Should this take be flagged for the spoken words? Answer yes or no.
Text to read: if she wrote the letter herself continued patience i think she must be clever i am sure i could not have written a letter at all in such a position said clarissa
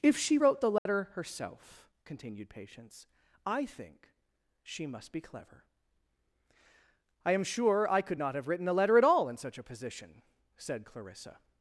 no